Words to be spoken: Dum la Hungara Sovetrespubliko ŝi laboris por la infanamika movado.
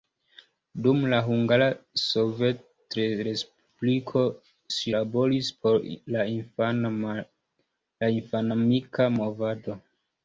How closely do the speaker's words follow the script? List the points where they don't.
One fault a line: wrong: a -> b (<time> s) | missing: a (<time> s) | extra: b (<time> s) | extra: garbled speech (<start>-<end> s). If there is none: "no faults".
no faults